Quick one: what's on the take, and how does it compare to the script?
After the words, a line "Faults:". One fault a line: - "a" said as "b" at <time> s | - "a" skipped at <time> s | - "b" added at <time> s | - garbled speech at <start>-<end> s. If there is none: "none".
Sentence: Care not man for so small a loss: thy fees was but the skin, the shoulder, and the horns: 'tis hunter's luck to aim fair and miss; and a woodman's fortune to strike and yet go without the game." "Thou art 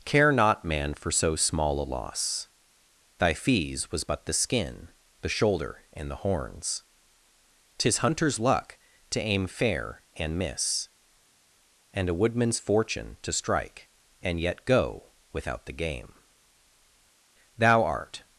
Care not man for so small a loss: thy fees was but the skin, the shoulder, and the horns: 'tis hunter's luck to aim fair and miss; and a woodman's fortune to strike and yet go without the game." "Thou art
Faults:
none